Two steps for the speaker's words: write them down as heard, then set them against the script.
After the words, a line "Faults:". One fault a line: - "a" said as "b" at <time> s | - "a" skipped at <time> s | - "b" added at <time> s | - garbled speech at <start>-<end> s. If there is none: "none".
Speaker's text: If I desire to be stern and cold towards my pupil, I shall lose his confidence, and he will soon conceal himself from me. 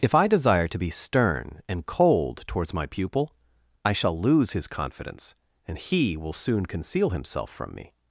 If I desire to be stern and cold towards my pupil, I shall lose his confidence, and he will soon conceal himself from me.
Faults:
none